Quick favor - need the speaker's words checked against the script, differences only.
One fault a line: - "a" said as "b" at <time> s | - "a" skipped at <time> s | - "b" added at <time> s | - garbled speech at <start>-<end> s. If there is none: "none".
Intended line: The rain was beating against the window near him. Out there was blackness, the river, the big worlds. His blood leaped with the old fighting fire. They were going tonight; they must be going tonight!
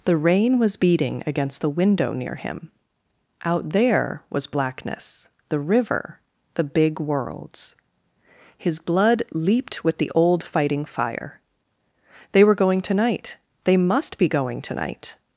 none